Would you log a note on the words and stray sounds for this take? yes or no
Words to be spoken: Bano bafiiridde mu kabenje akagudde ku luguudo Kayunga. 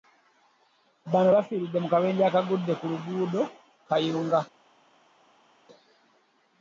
no